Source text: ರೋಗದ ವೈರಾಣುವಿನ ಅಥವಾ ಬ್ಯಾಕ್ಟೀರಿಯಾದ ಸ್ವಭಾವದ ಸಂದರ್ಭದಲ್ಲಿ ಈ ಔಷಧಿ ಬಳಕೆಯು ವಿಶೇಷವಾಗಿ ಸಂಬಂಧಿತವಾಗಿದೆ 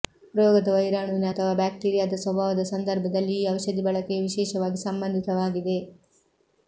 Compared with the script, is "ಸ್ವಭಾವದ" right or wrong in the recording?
right